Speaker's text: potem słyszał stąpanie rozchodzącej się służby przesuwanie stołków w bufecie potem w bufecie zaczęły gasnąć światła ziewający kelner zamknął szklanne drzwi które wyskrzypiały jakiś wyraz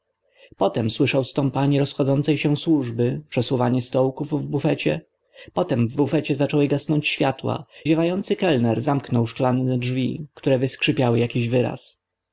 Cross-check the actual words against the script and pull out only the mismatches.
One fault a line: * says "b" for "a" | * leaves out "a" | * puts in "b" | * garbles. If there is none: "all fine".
all fine